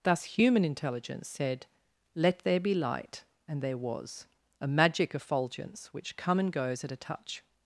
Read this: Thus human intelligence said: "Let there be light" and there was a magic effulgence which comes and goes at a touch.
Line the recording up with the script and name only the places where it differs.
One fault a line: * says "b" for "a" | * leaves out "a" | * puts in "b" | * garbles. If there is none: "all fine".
* says "come" for "comes"